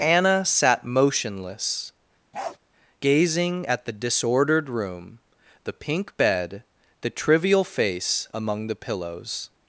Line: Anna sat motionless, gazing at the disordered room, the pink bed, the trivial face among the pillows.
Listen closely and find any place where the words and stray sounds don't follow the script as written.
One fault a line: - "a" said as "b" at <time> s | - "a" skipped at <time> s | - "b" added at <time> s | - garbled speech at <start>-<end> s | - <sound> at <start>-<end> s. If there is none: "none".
- bark at 2.3-2.6 s